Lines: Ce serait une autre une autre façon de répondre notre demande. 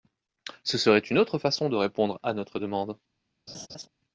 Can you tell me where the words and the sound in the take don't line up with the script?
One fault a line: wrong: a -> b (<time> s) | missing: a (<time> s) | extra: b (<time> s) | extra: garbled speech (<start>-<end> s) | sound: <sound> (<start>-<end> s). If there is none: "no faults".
missing: une autre (1.4 s)
extra: à (2.2 s)
sound: laugh (3.5-3.9 s)